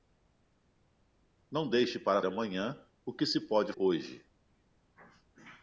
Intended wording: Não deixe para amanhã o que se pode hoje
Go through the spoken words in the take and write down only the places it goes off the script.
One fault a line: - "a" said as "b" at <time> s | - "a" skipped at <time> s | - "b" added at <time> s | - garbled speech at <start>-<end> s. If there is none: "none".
none